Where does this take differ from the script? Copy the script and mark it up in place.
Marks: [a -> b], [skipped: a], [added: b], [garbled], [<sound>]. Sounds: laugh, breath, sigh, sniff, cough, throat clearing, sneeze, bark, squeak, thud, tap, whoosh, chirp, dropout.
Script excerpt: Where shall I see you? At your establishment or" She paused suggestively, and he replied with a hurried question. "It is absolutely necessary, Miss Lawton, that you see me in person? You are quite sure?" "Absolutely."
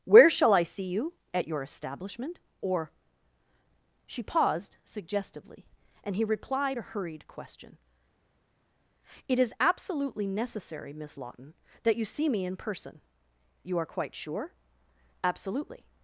Where shall I see you? At your establishment or" She paused suggestively, and he replied [skipped: with] a hurried question. "It is absolutely necessary, Miss Lawton, that you see me in person? You are quite sure?" "Absolutely."